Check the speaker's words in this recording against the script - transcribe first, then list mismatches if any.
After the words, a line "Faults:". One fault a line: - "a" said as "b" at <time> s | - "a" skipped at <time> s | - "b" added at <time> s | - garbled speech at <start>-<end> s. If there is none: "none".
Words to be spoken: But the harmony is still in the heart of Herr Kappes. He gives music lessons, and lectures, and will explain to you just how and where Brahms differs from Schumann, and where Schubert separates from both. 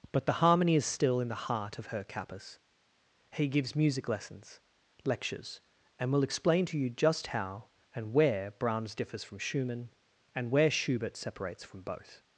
But the harmony is still in the heart of Herr Kappes. He gives music lessons, lectures, and will explain to you just how and where Brahms differs from Schumann, and where Schubert separates from both.
Faults:
- "and" skipped at 4.6 s